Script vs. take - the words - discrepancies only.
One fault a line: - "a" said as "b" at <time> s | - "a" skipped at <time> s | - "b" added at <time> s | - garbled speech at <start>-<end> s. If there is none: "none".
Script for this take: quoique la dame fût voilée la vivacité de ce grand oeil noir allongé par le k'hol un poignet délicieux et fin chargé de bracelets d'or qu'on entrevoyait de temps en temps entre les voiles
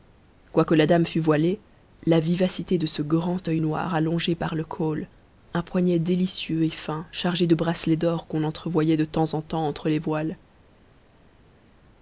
none